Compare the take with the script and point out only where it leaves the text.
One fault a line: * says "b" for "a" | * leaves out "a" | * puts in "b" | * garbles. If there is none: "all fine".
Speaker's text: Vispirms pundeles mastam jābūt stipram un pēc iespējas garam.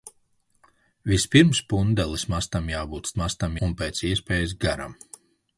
* says "mastam" for "stipram"